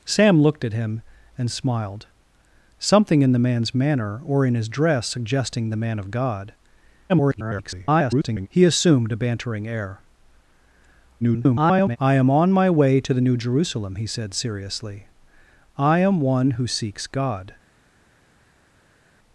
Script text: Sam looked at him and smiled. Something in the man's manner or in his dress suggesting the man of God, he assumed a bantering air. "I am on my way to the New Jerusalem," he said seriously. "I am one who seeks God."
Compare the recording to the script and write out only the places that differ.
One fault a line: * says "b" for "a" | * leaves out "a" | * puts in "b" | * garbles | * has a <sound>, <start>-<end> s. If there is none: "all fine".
* garbles
* garbles